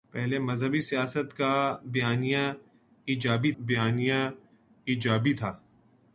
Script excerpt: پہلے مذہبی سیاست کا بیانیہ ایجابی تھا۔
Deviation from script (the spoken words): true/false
true